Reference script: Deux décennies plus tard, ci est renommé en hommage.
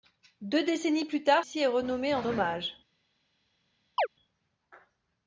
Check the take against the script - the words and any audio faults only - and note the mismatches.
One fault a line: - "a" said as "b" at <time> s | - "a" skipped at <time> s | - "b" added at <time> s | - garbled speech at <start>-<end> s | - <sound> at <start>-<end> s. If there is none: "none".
- chirp at 4.0-4.1 s